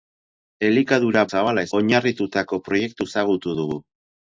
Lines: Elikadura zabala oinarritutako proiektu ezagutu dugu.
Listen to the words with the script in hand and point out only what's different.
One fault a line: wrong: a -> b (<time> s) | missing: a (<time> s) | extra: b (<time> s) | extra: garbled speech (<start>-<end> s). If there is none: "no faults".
no faults